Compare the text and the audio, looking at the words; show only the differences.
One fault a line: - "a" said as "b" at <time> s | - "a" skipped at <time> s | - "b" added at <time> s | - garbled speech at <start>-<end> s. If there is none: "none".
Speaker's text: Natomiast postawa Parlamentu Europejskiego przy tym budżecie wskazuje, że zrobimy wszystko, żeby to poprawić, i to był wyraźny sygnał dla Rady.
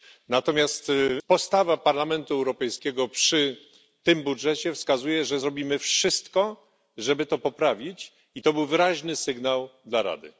none